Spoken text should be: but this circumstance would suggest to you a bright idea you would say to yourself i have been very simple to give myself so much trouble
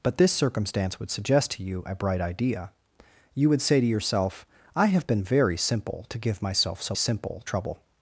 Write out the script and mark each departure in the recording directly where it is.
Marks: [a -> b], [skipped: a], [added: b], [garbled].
but this circumstance would suggest to you a bright idea you would say to yourself i have been very simple to give myself so [much -> simple] trouble